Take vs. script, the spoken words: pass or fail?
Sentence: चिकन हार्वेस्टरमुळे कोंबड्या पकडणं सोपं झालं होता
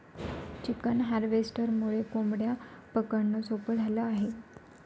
fail